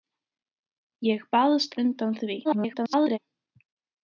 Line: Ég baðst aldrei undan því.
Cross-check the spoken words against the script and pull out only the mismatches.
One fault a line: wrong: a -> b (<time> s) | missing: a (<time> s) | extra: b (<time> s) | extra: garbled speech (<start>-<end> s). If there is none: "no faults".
missing: aldrei (1.8 s)
extra: garbled speech (2.4-3.2 s)